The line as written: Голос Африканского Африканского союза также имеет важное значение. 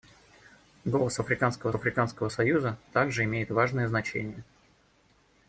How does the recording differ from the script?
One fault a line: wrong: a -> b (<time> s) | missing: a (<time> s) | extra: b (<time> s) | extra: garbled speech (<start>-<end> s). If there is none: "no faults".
no faults